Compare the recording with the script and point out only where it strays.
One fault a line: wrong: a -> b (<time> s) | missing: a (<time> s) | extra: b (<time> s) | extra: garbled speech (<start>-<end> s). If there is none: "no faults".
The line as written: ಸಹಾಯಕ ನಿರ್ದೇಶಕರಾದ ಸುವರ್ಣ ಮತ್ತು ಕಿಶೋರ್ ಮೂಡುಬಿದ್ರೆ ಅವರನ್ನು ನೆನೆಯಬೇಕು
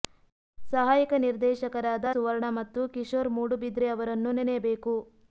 no faults